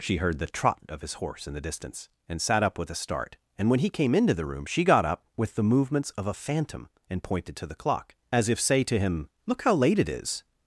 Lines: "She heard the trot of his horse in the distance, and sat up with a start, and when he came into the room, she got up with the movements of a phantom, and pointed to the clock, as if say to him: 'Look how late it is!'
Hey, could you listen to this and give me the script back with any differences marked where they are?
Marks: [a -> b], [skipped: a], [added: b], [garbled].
"She heard the trot of his horse in the distance, and sat up with a start, and when he came into the room, she got up with the movements of a phantom, and pointed to the clock, as if say to him: 'Look how late it is!'